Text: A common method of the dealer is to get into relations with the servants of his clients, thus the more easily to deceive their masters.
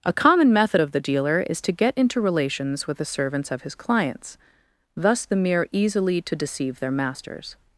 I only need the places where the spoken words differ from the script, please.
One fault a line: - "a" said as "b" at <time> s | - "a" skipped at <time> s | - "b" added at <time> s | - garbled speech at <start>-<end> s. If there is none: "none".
- "more" said as "mere" at 5.3 s